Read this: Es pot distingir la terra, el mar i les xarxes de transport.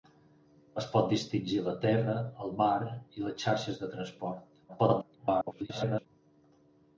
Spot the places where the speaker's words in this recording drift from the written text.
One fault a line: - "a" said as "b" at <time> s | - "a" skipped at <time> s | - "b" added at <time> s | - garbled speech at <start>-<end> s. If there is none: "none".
- garbled speech at 4.7-6.1 s